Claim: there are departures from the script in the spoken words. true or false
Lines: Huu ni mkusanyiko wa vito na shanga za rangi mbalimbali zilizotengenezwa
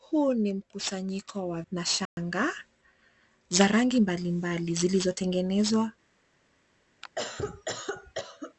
true